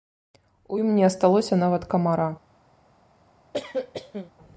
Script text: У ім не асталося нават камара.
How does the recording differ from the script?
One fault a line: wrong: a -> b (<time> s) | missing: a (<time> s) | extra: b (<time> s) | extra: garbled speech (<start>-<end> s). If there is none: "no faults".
no faults